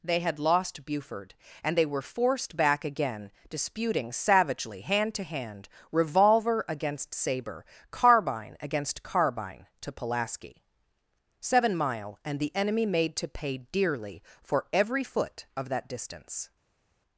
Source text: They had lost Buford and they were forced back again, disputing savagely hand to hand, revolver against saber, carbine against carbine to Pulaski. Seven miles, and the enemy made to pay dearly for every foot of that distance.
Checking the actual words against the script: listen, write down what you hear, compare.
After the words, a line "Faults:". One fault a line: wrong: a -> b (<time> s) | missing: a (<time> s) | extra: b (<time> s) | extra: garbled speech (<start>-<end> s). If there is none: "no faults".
They had lost Buford and they were forced back again, disputing savagely hand to hand, revolver against saber, carbine against carbine to Pulaski. Seven mile, and the enemy made to pay dearly for every foot of that distance.
Faults:
wrong: miles -> mile (11.8 s)